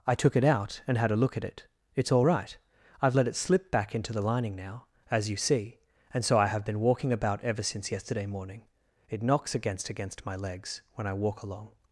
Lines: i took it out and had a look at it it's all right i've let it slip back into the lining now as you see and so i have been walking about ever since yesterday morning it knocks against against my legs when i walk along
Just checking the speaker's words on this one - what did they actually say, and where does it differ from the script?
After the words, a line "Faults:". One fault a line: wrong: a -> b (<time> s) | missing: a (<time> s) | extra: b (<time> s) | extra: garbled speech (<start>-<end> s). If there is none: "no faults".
i took it out and had a look at it it's all right i've let it slip back into the lining now as you see and so i have been walking about ever since yesterday morning it knocks against against my legs when i walk along
Faults:
no faults